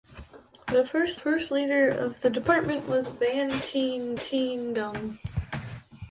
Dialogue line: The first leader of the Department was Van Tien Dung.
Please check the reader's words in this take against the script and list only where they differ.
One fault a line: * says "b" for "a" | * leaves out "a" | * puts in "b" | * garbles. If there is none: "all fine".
* puts in "first"
* puts in "Tien"